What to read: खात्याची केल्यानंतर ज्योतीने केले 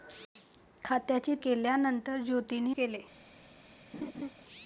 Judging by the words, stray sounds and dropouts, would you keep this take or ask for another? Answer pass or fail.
fail